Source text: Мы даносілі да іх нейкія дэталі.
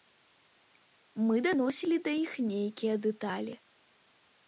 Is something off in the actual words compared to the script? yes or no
no